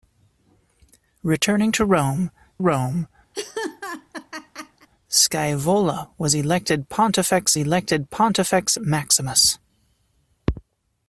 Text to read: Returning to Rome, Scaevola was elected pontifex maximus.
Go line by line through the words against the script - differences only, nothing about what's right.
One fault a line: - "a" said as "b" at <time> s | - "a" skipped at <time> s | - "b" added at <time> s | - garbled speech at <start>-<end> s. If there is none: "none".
- "Rome" added at 2.6 s
- "elected pontifex" added at 7.6 s